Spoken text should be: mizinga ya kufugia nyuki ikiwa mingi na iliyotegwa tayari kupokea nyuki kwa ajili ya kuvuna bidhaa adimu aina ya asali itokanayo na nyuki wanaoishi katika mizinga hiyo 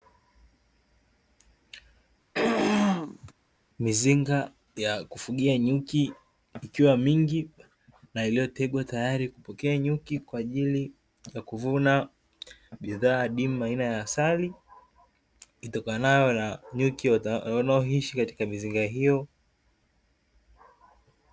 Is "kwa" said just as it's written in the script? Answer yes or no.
yes